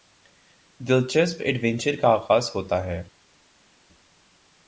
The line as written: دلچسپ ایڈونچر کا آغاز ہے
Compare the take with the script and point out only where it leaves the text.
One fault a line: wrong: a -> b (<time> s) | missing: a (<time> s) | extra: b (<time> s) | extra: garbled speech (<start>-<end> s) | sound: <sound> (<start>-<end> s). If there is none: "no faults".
extra: ہوتا (2.5 s)